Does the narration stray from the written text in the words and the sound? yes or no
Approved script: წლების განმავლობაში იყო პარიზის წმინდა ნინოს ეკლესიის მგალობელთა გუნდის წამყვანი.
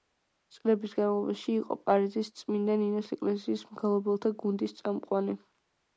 no